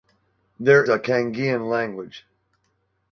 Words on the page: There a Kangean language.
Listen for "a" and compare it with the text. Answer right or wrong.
right